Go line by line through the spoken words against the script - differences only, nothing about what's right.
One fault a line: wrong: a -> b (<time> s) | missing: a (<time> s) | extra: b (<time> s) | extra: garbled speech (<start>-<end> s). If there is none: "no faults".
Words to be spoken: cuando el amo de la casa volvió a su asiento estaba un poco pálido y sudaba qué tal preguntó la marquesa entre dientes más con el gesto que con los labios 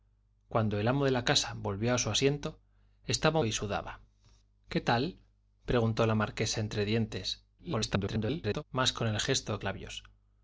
missing: un poco pálido (3.4 s)
extra: garbled speech (7.6-8.6 s)
missing: que con los (9.6 s)